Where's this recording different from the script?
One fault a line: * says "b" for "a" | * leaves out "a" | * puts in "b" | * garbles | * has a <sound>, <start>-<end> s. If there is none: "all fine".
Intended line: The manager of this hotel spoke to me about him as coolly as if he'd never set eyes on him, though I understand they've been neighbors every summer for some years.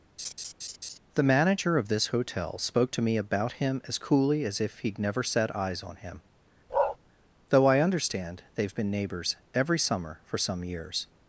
* has a laugh, 0.2-1.0 s
* has a bark, 6.7-7.0 s